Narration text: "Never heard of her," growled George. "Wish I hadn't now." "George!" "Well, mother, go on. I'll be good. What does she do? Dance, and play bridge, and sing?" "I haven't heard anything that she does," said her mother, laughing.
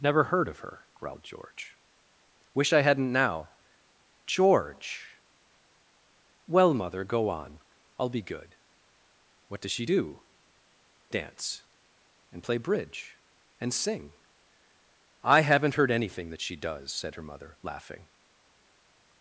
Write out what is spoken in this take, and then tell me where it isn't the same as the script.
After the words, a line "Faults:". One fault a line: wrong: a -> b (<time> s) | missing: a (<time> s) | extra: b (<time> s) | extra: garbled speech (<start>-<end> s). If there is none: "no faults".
"Never heard of her," growled George. "Wish I hadn't now." "George!" "Well, mother, go on. I'll be good. What does she do? Dance, and play bridge, and sing?" "I haven't heard anything that she does," said her mother, laughing.
Faults:
no faults